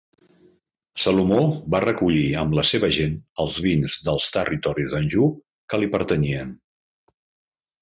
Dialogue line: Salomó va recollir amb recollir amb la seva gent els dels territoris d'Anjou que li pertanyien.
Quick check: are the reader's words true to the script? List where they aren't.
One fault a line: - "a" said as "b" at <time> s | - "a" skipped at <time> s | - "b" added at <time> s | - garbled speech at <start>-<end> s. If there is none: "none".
- "recollir amb" skipped at 2.6 s
- "vins" added at 3.7 s